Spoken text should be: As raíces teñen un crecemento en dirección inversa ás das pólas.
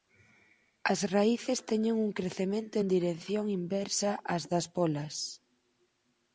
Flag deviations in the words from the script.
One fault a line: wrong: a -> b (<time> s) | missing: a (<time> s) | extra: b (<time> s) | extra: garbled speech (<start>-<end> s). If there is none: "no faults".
no faults